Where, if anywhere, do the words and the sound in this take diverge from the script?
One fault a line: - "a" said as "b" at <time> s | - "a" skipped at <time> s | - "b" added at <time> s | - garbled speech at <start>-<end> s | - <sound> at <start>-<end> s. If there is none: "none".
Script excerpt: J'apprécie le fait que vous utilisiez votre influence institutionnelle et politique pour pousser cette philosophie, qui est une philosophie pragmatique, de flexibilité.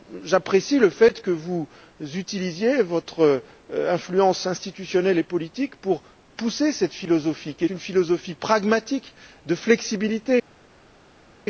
- "est" skipped at 7.7 s